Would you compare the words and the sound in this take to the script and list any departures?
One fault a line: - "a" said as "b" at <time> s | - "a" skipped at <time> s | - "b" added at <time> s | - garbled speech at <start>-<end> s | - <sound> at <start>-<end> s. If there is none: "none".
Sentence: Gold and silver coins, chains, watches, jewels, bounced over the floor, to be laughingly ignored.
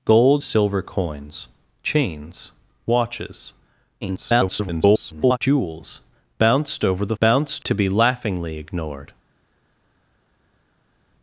- "and" skipped at 0.4 s
- garbled speech at 4.0-5.4 s
- "floor" said as "bounced" at 7.2 s